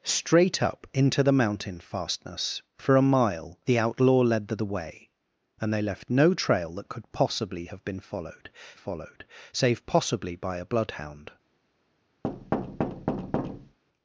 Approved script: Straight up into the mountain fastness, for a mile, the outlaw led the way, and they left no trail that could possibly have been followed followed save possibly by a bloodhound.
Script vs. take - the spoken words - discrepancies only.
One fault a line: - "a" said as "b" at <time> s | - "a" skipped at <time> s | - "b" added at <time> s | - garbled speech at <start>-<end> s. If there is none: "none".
none